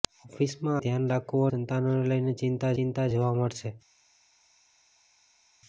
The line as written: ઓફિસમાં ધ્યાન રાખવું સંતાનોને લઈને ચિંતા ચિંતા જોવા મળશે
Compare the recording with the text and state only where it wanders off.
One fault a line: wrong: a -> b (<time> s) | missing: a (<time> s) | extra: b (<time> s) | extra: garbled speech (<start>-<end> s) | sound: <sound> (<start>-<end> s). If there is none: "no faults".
no faults